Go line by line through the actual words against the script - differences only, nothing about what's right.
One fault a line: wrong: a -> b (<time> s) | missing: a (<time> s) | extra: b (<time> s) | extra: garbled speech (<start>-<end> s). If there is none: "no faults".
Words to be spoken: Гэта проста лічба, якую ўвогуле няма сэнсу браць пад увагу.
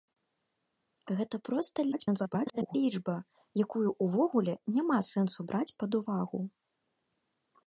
extra: garbled speech (1.9-2.8 s)